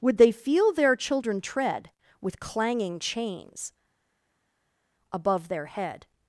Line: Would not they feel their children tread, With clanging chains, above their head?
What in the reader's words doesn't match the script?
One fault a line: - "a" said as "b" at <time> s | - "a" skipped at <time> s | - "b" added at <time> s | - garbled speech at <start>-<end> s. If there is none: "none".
- "not" skipped at 0.2 s